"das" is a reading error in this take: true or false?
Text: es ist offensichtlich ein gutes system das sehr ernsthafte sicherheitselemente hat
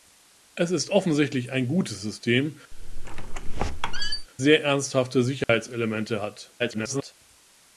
true